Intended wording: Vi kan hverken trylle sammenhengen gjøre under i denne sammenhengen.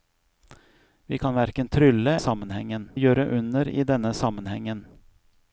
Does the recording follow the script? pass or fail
pass